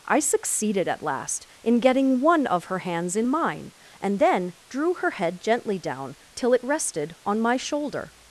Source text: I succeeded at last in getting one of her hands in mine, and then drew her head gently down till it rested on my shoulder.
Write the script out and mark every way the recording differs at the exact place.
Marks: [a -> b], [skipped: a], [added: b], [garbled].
I succeeded at last in getting one of her hands in mine, and then drew her head gently down till it rested on my shoulder.